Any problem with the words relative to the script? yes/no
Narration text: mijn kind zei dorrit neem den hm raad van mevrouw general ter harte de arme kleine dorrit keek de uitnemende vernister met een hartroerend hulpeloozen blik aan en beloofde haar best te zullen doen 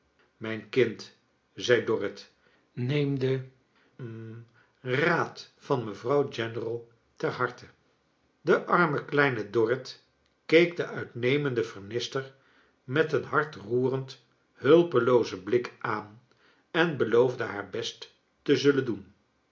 no